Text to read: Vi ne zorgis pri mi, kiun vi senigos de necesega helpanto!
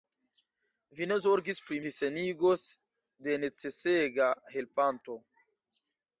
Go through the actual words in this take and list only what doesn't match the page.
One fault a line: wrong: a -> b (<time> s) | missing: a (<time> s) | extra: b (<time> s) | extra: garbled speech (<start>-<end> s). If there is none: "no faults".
missing: mi kiun (1.8 s)